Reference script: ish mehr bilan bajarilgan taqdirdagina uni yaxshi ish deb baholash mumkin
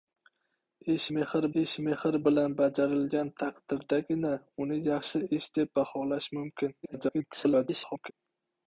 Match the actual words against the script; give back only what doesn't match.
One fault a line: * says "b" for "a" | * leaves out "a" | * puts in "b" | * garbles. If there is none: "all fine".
* puts in "ish mehr"
* garbles